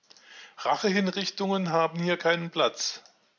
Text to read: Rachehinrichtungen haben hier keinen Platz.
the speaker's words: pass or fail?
pass